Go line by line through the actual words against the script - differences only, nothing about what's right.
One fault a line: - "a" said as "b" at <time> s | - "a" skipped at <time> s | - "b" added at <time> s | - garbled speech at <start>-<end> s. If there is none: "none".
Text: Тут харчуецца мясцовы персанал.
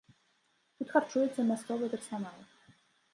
none